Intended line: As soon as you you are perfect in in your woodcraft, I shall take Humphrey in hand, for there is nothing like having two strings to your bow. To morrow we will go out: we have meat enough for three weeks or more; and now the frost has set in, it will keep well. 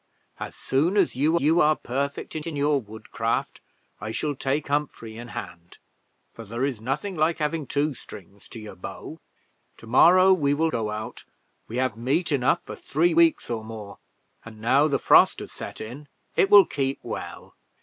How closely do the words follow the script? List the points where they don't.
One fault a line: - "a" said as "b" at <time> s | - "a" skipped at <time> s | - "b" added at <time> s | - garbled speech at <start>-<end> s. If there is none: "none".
none